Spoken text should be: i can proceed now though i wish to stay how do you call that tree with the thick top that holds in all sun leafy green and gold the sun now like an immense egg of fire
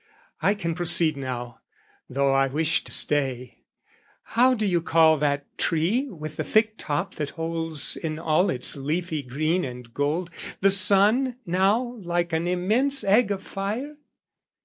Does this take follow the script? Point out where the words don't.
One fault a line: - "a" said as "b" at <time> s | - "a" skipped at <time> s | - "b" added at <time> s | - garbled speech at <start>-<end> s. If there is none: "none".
- "sun" said as "its" at 8.5 s